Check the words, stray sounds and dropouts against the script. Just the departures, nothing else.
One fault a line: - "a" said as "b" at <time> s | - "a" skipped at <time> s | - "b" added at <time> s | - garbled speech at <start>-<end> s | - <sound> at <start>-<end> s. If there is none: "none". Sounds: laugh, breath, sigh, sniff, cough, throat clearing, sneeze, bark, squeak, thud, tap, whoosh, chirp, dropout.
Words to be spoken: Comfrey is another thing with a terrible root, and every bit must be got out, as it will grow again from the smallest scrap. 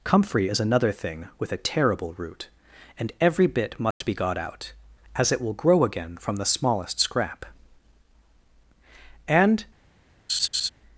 - dropout at 3.9-4.0 s
- "And" added at 9.3 s
- laugh at 10.3-10.7 s